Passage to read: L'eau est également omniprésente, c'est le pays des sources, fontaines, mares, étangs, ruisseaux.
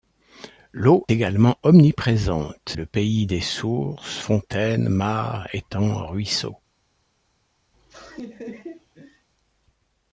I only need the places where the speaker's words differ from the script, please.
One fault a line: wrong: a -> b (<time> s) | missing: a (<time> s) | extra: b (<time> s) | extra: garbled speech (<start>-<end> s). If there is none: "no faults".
missing: est (1.1 s)
missing: c'est (2.7 s)